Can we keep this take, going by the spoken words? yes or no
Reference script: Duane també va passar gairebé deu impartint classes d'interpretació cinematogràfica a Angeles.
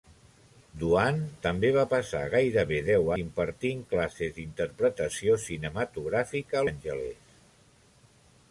yes